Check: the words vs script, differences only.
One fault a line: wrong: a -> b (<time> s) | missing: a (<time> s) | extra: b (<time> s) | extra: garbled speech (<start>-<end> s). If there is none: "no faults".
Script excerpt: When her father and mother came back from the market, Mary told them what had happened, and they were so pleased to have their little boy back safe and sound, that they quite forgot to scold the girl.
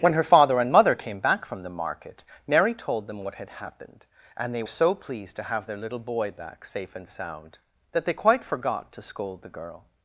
missing: were (4.6 s)